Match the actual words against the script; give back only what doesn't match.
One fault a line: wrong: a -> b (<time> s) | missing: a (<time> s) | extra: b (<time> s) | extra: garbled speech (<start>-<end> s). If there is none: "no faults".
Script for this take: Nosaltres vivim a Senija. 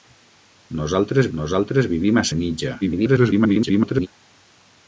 extra: nosaltres (1.4 s)
extra: garbled speech (2.8-4.1 s)